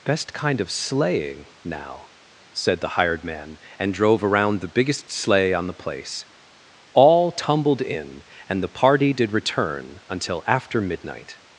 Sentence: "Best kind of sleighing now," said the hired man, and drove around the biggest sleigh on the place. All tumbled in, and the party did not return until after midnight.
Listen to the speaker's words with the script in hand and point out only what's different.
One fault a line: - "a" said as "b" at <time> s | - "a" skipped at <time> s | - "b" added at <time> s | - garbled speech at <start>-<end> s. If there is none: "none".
- "not" skipped at 9.3 s